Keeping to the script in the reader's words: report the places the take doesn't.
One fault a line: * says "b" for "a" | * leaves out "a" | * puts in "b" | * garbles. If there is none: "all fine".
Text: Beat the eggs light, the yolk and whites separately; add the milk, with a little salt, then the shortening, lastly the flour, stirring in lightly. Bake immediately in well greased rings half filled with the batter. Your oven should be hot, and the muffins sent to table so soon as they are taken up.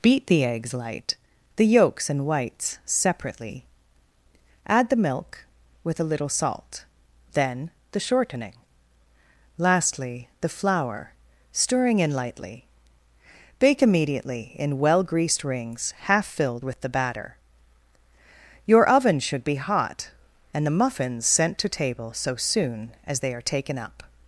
* says "yolks" for "yolk"